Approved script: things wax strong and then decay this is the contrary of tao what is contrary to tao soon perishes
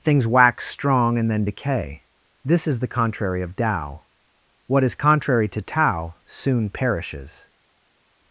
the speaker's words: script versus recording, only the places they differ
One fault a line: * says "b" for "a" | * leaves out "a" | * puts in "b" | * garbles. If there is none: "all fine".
all fine